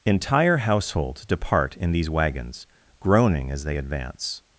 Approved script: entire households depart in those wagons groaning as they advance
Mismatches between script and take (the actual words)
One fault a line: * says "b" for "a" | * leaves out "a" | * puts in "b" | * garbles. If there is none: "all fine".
* says "these" for "those"